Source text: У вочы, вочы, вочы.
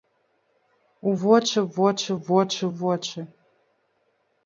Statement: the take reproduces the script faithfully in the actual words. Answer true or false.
false